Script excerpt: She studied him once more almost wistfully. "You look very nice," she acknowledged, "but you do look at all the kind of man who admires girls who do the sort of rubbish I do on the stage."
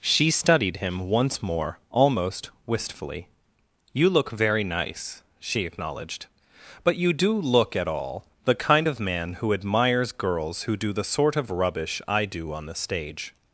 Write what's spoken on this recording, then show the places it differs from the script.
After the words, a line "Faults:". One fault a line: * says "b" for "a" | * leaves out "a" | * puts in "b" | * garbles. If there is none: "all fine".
She studied him once more almost wistfully. "You look very nice," she acknowledged, "but you do look at all the kind of man who admires girls who do the sort of rubbish I do on the stage."
Faults:
all fine